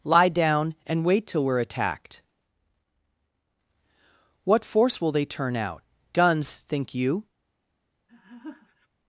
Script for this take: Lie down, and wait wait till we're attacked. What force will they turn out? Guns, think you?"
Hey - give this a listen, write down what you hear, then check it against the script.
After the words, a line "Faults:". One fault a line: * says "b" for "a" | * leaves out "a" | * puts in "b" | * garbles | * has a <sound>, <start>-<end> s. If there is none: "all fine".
Lie down, and wait till we're attacked. What force will they turn out? Guns, think you?"
Faults:
* leaves out "wait"
* has a laugh, 8.1-8.9 s